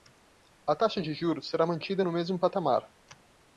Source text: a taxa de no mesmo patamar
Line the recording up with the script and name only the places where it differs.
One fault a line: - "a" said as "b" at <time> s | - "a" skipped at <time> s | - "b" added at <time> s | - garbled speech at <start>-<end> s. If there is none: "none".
- "juros será mantida" added at 1.1 s